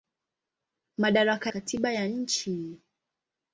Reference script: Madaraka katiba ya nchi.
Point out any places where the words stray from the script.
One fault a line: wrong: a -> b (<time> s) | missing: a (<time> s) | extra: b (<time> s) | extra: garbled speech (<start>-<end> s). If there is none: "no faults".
no faults